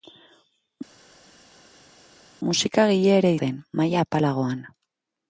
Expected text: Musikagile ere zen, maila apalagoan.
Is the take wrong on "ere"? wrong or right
right